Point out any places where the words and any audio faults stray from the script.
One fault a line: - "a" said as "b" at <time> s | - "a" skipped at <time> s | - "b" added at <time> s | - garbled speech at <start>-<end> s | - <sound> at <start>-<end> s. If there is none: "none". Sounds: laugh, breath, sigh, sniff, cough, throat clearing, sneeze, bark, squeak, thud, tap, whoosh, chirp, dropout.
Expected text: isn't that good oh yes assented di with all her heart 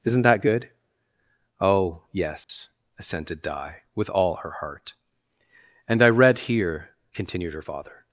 - dropout at 2.4-2.5 s
- "and i read here continued her father" added at 5.9 s